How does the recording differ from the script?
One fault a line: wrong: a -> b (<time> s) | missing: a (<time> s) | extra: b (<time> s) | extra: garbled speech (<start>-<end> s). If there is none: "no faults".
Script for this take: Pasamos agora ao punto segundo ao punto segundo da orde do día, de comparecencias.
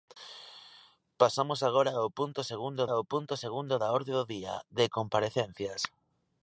no faults